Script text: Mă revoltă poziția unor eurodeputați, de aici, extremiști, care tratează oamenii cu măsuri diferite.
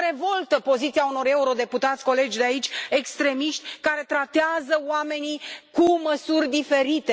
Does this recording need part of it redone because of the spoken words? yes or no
yes